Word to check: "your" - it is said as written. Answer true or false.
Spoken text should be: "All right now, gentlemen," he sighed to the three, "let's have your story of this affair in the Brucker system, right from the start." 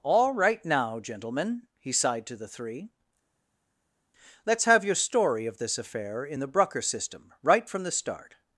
true